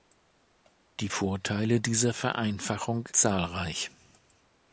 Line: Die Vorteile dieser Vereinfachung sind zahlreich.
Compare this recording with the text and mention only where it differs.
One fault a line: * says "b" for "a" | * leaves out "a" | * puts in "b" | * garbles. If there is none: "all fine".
* leaves out "sind"